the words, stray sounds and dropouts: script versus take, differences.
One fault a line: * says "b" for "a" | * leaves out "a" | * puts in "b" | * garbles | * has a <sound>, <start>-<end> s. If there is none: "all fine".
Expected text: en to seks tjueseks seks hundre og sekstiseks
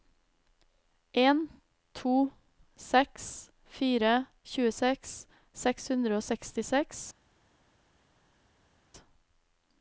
* puts in "fire"